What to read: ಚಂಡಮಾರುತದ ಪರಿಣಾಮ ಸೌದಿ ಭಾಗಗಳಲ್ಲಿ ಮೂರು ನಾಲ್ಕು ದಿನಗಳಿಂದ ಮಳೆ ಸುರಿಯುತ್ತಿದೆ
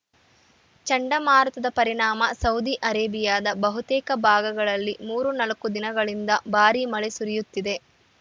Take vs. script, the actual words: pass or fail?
fail